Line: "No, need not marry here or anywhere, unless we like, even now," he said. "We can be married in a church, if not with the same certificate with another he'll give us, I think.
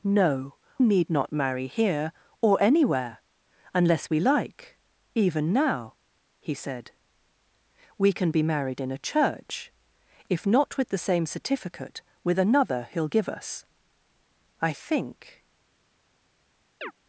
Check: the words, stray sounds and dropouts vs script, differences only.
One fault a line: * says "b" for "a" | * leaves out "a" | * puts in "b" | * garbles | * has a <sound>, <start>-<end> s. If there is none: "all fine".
* has a chirp, 16.8-16.9 s